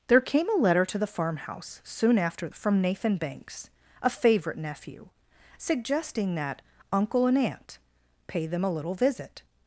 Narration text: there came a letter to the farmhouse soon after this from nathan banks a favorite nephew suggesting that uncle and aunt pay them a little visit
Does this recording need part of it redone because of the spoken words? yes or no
yes